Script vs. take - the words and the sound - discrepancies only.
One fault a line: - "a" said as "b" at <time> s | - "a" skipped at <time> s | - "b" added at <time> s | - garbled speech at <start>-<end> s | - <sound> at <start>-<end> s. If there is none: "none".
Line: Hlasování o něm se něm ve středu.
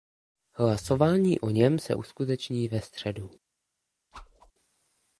- "něm" said as "uskuteční" at 1.9 s
- whoosh at 4.1-4.5 s